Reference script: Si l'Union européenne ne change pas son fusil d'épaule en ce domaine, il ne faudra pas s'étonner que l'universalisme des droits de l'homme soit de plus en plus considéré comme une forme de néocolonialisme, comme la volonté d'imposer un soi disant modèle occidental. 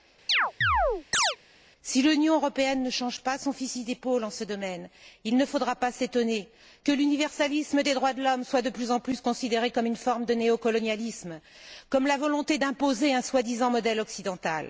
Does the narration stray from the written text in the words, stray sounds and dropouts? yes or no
yes